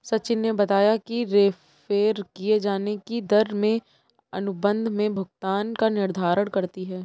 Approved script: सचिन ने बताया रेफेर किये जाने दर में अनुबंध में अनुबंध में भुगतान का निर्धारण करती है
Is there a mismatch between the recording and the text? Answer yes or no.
yes